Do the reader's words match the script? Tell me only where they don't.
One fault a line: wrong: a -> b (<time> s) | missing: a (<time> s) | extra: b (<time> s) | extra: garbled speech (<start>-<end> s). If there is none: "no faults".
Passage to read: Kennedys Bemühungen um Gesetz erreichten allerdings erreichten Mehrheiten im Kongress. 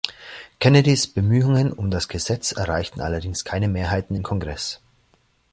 extra: das (1.9 s)
wrong: erreichten -> keine (3.4 s)